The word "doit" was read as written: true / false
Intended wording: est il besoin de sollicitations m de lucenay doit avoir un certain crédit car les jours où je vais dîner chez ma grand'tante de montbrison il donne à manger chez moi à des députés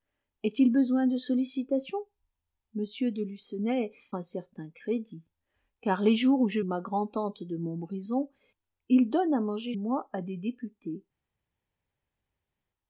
false